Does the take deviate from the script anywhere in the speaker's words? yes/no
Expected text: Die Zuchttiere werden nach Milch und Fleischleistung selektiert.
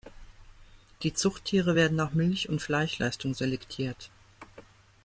no